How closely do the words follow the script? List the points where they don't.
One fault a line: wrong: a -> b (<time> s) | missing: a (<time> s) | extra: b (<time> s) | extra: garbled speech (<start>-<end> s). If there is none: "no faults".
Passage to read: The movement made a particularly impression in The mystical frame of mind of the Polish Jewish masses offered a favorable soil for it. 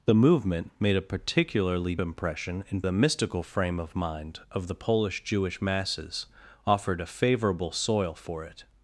no faults